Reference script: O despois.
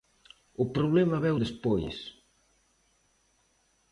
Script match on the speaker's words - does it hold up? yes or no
no